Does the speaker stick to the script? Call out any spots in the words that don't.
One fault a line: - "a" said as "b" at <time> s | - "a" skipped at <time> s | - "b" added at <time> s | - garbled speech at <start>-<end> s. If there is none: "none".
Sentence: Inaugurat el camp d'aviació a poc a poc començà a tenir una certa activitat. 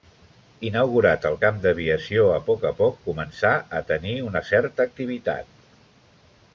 none